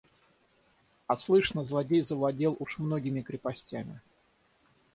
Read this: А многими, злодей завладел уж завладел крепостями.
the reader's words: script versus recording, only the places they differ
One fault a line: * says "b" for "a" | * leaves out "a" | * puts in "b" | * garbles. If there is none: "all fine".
* says "слышно" for "многими"
* says "многими" for "завладел"